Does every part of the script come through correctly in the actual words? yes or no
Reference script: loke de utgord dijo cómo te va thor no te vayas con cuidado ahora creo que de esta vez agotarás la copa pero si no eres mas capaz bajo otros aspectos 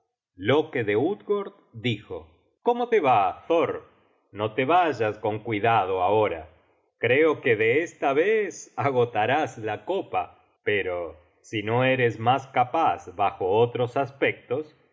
yes